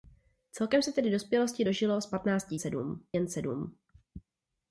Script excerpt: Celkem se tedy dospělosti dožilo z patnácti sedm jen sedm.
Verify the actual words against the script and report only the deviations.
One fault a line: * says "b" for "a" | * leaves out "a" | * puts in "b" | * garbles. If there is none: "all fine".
all fine